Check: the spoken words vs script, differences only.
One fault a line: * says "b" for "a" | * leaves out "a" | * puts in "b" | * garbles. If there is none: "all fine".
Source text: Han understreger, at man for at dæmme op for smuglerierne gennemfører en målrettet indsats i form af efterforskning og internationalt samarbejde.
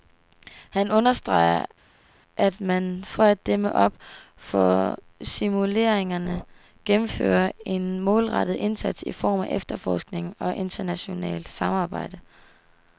all fine